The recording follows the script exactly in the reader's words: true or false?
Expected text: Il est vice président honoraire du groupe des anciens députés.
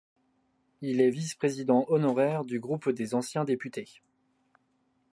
true